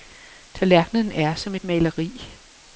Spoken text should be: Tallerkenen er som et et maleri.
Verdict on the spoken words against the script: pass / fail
fail